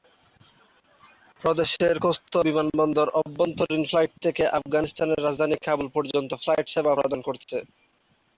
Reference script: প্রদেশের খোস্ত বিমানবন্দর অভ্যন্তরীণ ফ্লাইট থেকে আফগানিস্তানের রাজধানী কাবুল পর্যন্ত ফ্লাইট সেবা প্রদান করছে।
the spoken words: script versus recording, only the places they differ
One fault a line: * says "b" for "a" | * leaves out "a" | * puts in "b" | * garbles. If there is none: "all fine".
all fine